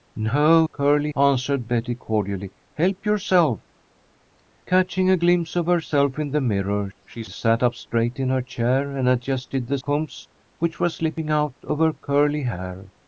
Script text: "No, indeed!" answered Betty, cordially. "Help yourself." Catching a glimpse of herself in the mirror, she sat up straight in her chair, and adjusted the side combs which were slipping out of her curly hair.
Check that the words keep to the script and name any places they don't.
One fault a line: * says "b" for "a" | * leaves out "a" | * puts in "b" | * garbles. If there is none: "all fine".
* says "curly" for "indeed"
* leaves out "side"